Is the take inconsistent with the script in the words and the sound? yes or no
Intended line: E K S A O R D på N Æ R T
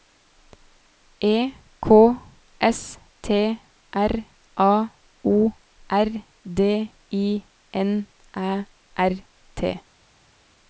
yes